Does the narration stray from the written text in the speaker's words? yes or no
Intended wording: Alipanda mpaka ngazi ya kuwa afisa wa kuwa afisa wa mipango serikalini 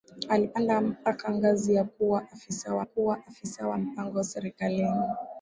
no